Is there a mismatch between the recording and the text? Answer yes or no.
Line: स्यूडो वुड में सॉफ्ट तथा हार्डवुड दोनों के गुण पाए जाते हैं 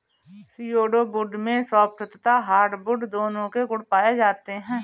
no